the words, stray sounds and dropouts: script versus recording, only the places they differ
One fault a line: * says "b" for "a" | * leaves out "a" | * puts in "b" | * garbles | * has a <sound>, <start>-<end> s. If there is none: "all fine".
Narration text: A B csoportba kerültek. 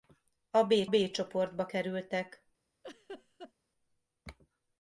* puts in "B"
* has a laugh, 2.8-3.5 s